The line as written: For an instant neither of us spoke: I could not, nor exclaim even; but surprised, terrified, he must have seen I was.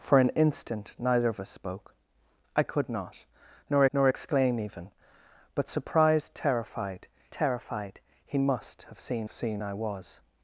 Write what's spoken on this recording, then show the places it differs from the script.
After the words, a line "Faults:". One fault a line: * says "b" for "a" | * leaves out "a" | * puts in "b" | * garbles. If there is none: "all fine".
For an instant neither of us spoke: I could not, nor nor exclaim even; but surprised, terrified terrified, he must have seen seen I was.
Faults:
* puts in "nor"
* puts in "terrified"
* puts in "seen"